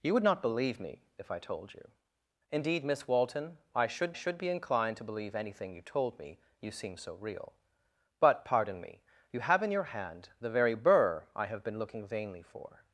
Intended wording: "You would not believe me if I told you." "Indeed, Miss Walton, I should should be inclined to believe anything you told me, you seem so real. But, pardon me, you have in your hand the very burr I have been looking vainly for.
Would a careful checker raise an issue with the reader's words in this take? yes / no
no